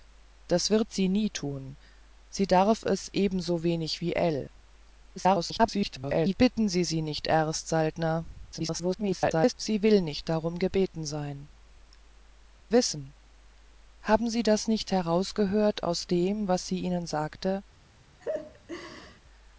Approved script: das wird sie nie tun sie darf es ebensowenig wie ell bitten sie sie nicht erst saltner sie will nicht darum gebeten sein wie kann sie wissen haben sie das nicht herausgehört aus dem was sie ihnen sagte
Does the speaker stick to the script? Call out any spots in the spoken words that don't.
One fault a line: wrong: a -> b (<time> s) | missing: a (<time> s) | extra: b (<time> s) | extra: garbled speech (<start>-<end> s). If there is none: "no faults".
extra: garbled speech (5.2-6.4 s)
extra: garbled speech (8.5-9.5 s)
missing: wie kann sie (11.5 s)